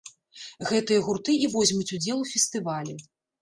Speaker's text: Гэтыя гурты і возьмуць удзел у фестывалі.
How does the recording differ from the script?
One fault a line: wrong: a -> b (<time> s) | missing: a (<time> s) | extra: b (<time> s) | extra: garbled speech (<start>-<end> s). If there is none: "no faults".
no faults